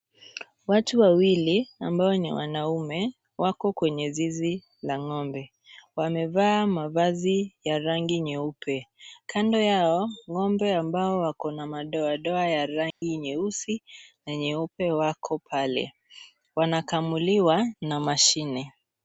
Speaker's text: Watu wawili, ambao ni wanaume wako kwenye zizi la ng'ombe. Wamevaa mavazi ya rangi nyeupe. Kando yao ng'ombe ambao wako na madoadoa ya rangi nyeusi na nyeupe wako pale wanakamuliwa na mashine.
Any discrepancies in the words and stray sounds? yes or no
yes